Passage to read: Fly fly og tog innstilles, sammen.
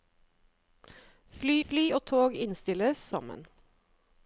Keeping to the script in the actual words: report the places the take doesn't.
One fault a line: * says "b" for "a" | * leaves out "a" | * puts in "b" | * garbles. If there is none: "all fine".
all fine